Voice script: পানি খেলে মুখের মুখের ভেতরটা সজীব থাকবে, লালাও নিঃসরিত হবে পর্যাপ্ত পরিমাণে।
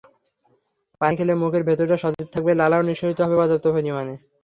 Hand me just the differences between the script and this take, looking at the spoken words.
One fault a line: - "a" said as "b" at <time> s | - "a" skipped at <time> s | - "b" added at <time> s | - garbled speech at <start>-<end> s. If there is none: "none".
- "মুখের" skipped at 1.6 s